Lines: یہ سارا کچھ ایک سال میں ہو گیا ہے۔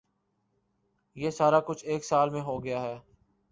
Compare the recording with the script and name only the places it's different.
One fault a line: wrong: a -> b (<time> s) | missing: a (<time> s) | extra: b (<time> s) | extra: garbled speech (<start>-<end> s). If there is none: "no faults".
no faults